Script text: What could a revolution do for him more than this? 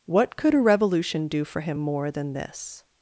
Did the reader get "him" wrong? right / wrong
right